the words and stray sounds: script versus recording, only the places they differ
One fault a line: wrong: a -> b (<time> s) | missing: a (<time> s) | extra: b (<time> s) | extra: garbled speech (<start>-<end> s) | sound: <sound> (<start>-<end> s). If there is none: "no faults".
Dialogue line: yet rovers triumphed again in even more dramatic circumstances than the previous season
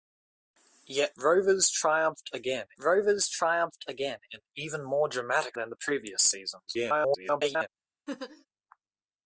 extra: rovers triumphed again (2.8 s)
missing: circumstances (5.6 s)
extra: garbled speech (6.7-7.7 s)
sound: laugh (8.1-8.5 s)